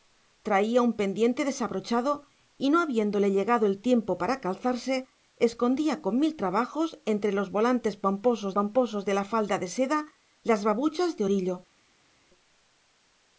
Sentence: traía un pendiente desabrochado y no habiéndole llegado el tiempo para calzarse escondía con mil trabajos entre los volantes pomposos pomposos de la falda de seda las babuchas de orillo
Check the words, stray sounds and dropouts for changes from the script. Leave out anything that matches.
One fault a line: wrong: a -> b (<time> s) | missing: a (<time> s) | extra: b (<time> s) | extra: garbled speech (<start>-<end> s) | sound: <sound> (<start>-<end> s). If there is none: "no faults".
no faults